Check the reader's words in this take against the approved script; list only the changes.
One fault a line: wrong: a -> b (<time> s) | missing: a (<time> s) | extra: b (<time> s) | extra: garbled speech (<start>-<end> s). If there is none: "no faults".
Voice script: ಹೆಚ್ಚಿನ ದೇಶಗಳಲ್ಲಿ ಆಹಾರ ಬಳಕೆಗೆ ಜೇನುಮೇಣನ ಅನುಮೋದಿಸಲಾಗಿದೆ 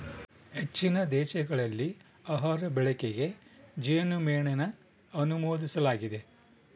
no faults